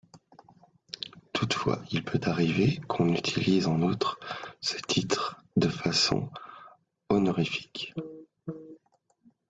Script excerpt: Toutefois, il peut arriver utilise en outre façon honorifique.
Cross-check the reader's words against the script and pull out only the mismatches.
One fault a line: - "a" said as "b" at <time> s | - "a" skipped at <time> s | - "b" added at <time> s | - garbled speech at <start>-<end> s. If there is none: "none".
- "qu'on" added at 2.9 s
- "ce titre de" added at 4.6 s